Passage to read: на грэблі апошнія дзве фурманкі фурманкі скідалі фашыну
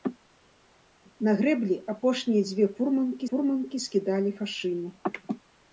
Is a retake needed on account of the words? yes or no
no